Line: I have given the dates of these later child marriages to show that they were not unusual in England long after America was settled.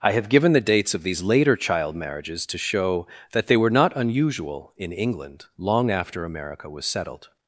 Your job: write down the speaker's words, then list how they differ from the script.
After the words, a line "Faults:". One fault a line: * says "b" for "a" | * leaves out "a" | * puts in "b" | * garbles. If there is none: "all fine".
I have given the dates of these later child marriages to show that they were not unusual in England long after America was settled.
Faults:
all fine